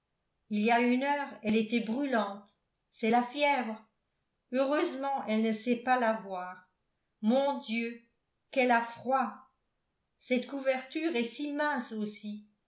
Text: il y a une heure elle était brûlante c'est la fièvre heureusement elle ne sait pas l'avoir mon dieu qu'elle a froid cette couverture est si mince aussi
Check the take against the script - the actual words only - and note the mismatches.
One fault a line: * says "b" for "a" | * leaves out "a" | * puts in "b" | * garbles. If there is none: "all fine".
all fine